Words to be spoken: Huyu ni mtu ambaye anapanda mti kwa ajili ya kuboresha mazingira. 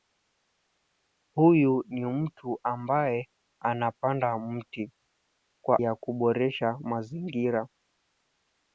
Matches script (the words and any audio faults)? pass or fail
fail